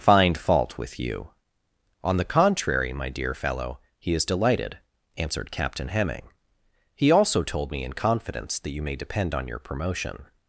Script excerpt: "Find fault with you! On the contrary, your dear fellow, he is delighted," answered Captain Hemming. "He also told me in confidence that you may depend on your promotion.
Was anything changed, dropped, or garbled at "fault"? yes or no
no